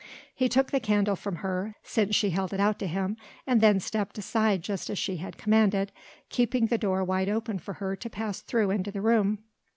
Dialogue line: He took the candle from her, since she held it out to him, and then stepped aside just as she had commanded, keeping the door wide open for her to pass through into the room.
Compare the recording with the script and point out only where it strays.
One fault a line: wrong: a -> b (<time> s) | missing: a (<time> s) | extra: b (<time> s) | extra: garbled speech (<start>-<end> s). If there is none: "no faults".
no faults